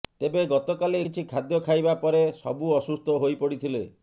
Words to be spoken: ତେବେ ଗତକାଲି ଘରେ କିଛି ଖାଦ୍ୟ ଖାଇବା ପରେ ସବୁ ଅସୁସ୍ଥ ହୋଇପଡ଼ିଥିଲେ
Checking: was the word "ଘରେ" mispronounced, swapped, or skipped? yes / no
yes